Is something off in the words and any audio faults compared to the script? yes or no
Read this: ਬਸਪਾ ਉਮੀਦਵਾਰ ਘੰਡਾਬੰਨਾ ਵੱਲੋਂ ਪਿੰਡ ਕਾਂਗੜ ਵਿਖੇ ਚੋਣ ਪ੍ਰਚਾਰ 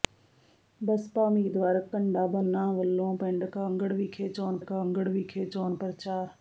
yes